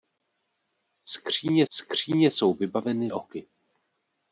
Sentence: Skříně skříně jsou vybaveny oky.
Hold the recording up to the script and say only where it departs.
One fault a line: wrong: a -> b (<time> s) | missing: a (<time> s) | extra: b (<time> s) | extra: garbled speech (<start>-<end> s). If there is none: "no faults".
no faults